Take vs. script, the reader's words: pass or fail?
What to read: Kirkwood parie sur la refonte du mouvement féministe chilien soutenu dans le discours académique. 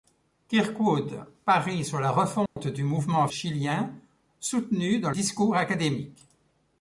fail